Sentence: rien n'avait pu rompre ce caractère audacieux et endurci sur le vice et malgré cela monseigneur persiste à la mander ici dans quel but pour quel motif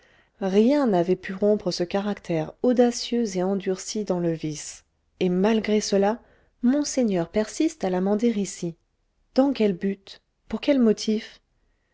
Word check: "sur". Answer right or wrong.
wrong